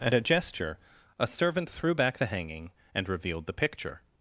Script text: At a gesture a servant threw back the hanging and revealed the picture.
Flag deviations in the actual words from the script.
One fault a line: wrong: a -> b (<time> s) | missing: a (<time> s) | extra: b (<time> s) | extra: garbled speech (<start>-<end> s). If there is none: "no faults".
no faults